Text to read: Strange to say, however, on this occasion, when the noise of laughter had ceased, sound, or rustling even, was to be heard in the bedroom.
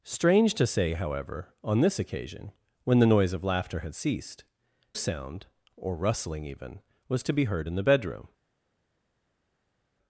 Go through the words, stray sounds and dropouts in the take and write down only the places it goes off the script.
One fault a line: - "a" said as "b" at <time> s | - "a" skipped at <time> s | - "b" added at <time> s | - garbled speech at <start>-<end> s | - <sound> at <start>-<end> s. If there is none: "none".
none